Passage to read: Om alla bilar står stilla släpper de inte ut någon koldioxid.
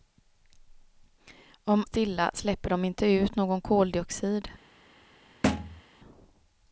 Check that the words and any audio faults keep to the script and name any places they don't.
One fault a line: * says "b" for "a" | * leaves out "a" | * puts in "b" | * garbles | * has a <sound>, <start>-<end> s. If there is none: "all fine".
* leaves out "alla bilar står"
* has a thud, 5.4-5.8 s